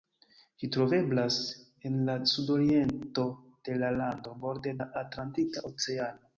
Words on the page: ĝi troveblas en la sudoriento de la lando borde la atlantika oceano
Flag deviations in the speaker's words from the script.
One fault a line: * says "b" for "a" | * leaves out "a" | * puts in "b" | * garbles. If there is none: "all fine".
all fine